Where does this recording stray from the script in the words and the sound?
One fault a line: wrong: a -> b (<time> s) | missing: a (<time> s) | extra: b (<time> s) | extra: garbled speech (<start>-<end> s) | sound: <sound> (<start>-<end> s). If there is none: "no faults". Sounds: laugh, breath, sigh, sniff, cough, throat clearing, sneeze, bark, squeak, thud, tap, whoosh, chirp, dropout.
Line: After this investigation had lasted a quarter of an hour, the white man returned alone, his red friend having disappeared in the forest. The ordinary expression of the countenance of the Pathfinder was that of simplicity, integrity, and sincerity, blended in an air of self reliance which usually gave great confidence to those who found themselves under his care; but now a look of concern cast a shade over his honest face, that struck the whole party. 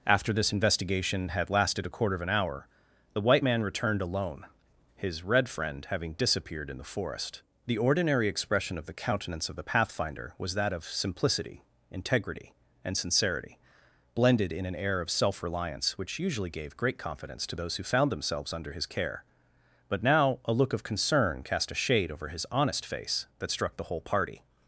no faults